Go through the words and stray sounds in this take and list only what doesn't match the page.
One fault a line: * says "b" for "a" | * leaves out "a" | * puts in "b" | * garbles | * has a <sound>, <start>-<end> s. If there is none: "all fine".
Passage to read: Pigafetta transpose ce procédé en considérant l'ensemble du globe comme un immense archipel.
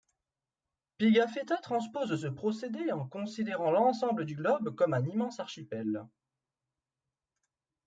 all fine